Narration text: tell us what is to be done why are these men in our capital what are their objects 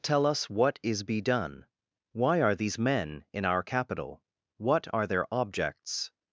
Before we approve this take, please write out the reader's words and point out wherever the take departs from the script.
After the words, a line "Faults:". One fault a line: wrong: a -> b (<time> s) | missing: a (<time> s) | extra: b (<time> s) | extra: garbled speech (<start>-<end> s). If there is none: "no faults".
tell us what is be done why are these men in our capital what are their objects
Faults:
missing: to (1.0 s)